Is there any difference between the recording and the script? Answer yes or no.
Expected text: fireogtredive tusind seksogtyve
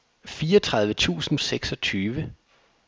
no